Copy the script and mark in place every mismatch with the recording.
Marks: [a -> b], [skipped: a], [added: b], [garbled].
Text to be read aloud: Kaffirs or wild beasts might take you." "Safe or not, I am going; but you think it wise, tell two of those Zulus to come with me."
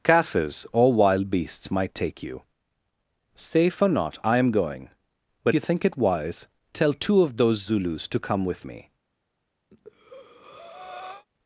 Kaffirs or wild beasts might take you." "Safe or not, I am going; but you think it wise, tell two of those Zulus to come with me."